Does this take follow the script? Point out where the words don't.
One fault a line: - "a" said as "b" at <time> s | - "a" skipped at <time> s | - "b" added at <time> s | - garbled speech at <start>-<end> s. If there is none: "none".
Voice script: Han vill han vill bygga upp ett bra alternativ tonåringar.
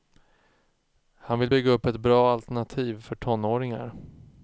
- "han vill" skipped at 1.5 s
- "för" added at 3.0 s